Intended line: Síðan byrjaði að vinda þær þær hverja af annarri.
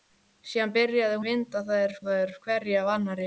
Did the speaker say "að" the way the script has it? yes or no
yes